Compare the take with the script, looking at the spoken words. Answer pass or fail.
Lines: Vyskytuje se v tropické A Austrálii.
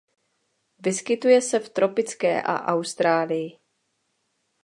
pass